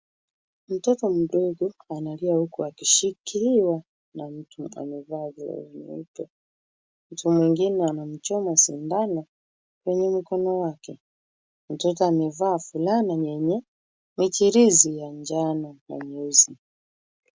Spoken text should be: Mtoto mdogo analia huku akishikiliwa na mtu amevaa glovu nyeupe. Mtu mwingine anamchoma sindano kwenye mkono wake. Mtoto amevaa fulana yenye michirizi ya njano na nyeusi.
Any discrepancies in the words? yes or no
no